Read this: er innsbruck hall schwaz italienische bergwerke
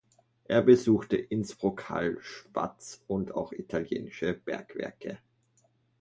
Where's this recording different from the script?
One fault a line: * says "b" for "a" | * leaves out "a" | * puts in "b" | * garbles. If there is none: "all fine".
* puts in "besuchte"
* puts in "und auch"